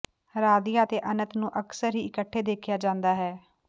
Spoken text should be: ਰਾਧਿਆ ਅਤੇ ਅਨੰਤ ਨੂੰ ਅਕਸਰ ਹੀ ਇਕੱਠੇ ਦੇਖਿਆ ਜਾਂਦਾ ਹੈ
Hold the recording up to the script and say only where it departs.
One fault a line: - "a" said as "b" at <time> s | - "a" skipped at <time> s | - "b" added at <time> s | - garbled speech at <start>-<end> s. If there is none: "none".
none